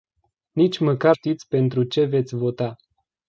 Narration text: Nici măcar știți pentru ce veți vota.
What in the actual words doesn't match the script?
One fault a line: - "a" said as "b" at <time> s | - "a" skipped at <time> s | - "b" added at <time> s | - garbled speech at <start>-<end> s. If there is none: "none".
none